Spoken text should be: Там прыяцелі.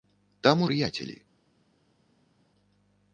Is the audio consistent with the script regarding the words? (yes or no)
yes